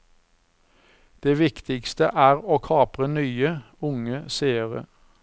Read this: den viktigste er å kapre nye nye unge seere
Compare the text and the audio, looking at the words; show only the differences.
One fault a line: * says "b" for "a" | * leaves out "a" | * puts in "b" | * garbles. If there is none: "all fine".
* says "det" for "den"
* leaves out "nye"